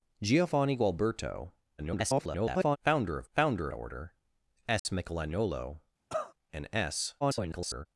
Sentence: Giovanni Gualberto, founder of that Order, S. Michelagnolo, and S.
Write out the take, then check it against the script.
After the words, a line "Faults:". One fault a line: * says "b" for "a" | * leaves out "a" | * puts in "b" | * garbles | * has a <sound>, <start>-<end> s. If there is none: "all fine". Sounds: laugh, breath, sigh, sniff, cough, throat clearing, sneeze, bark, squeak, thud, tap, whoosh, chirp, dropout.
Giovanni Gualberto, [garbled] founder of founder Order, S. Michelagnolo, and S. [garbled]
Faults:
* garbles
* says "founder" for "that"
* has a dropout, 4.8-4.9 s
* has a cough, 6.1-6.3 s
* garbles